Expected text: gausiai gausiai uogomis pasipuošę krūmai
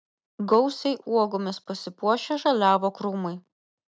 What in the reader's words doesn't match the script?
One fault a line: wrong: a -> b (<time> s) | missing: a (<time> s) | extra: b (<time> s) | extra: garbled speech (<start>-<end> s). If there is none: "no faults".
missing: gausiai (0.9 s)
extra: žaliavo (2.5 s)